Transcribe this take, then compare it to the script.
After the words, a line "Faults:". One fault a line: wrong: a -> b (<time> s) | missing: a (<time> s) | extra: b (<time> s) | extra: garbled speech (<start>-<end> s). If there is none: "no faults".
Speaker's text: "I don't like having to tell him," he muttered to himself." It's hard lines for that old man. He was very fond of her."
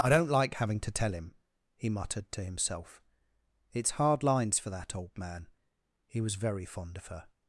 "I don't like having to tell him," he muttered to himself." It's hard lines for that old man. He was very fond of her."
Faults:
no faults